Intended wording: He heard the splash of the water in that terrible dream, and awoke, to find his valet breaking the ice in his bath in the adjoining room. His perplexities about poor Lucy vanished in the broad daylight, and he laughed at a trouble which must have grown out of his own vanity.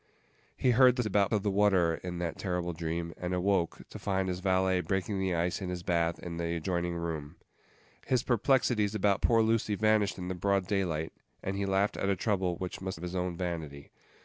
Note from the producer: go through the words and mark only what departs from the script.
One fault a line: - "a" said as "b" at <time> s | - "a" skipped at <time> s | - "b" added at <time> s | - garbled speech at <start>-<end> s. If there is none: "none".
- "splash" said as "about" at 1.0 s
- "have grown out" skipped at 13.0 s